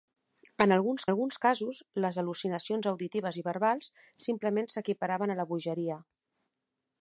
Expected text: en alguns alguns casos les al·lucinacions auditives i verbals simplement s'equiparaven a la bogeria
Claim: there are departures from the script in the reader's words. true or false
false